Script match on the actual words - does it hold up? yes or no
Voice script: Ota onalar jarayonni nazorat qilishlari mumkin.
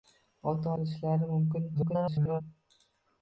no